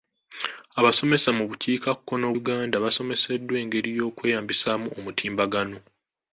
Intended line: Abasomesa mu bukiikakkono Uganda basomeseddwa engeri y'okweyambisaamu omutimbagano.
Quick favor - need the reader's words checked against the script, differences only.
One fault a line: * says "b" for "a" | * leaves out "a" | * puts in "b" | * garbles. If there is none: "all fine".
all fine